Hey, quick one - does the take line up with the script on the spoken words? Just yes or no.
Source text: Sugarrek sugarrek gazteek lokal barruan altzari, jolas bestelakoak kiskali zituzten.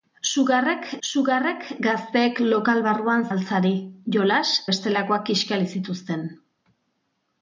yes